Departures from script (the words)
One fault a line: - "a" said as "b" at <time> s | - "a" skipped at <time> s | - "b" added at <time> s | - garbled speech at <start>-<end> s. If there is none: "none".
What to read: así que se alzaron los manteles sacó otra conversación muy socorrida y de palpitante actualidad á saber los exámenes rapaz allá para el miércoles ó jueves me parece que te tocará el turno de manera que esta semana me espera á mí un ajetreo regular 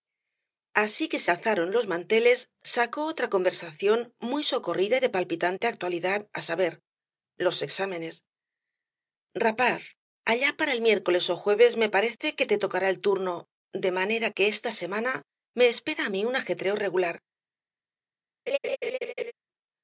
none